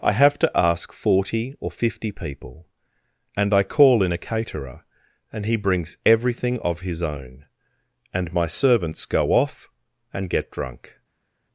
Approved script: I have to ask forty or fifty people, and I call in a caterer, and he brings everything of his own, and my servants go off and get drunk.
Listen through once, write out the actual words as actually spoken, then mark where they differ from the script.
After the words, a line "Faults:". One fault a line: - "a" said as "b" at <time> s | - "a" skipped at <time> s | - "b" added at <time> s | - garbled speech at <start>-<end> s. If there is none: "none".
I have to ask forty or fifty people, and I call in a caterer, and he brings everything of his own, and my servants go off and get drunk.
Faults:
none